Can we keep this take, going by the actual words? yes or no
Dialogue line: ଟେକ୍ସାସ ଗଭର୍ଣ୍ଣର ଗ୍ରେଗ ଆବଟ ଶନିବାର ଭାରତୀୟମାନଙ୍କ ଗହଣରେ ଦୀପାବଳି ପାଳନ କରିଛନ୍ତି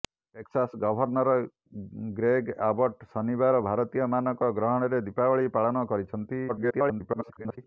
no